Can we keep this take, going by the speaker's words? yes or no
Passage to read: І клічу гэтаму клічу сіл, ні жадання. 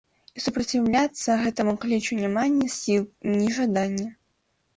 no